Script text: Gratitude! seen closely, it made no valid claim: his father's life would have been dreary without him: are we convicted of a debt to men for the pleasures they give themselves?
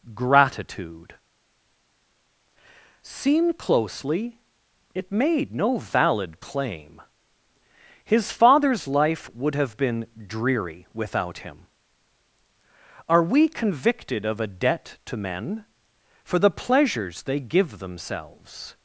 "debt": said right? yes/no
yes